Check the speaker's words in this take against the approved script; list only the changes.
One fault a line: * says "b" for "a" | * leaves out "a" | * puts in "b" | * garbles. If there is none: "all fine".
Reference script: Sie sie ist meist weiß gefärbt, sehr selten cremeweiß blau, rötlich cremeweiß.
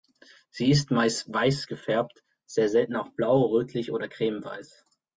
* leaves out "sie"
* says "auch" for "cremeweiß"
* puts in "oder"